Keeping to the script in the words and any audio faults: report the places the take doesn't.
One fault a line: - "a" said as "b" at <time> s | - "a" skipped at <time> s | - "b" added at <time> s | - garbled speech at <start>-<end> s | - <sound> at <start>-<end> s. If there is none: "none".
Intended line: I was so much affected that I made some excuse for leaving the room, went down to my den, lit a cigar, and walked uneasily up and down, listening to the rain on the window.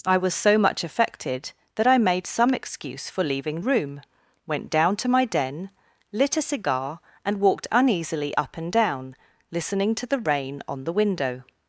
- "the" skipped at 3.6 s